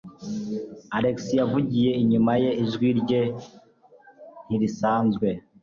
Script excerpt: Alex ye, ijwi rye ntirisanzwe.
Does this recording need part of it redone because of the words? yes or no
yes